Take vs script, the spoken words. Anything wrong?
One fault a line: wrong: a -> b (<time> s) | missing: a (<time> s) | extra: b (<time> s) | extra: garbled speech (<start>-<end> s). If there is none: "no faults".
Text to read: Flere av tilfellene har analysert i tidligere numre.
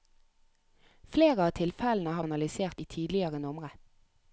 no faults